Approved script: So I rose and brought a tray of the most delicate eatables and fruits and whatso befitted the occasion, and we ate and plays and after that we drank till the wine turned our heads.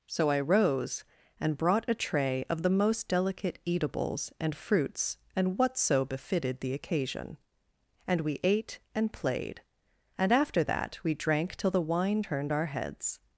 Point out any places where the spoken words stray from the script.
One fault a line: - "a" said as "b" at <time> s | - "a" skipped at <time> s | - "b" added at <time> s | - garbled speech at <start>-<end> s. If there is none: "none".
- "plays" said as "played" at 9.1 s